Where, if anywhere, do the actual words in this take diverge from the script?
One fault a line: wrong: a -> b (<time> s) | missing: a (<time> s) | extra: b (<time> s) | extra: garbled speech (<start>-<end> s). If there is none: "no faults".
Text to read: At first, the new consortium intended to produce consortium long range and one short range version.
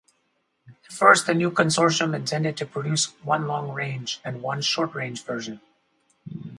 wrong: consortium -> one (3.2 s)